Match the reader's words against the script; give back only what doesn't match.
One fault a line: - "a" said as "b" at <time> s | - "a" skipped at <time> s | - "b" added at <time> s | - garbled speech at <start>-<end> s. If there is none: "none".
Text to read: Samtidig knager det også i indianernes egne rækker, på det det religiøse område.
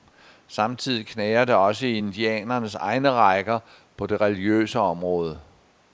- "det" skipped at 4.2 s